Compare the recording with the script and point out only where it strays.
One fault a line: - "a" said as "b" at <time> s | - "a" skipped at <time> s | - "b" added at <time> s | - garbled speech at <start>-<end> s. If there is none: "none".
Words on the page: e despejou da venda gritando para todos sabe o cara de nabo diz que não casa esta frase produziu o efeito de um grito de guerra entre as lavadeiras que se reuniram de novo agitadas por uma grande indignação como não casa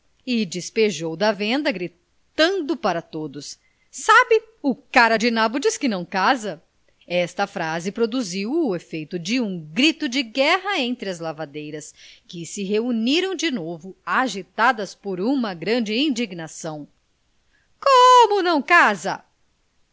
none